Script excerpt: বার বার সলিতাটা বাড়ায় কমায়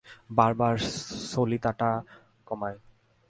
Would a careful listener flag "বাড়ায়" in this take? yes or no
yes